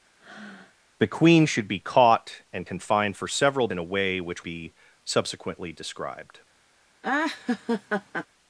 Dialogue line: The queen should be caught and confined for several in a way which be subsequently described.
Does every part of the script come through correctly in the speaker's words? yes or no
yes